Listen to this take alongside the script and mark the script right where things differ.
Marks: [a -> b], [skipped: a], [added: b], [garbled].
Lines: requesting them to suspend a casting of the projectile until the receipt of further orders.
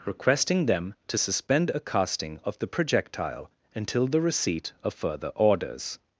requesting them to suspend a casting of the projectile until the receipt of further orders.